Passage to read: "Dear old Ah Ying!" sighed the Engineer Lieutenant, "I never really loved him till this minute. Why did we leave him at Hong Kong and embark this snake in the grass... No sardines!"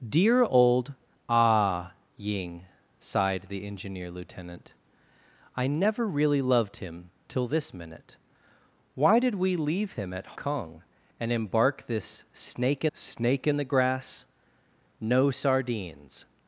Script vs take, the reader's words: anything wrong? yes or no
yes